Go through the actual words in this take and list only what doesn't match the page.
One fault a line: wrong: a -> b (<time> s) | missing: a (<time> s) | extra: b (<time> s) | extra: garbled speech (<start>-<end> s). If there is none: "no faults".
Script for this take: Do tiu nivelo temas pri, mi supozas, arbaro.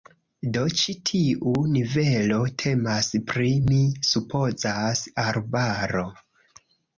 extra: ĉi (0.8 s)